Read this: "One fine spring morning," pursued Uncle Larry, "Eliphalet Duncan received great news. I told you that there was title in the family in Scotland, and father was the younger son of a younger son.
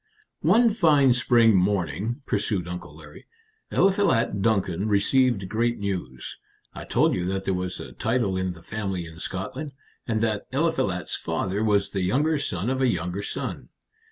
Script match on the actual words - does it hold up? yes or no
no